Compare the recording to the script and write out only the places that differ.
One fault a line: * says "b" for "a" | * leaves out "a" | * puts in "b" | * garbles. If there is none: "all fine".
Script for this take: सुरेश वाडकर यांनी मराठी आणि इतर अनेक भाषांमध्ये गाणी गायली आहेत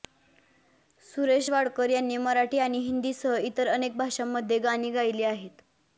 * puts in "हिंदीसह"